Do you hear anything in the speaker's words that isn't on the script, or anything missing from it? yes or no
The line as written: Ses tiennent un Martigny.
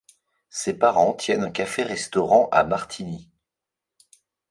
yes